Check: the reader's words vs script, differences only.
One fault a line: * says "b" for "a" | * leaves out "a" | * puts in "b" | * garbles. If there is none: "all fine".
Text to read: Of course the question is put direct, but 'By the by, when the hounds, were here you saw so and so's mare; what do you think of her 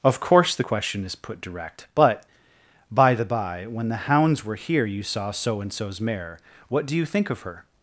all fine